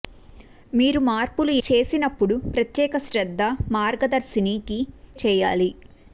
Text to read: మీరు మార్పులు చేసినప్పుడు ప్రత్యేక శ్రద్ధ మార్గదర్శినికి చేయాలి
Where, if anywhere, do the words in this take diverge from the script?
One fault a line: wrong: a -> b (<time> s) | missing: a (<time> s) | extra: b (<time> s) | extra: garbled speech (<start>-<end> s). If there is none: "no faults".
no faults